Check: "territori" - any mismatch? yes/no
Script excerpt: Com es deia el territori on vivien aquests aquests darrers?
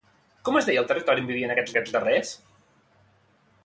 no